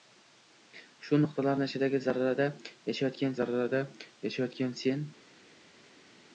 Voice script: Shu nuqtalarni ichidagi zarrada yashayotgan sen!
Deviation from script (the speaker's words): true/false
true